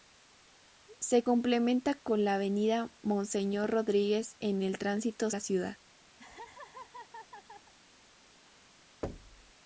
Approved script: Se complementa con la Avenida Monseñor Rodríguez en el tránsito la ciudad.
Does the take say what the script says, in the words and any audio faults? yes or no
no